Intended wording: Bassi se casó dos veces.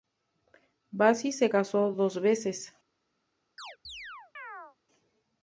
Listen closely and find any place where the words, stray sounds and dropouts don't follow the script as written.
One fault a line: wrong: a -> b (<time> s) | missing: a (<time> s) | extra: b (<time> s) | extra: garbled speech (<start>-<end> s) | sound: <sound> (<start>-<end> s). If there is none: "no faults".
sound: chirp (3.6-4.8 s)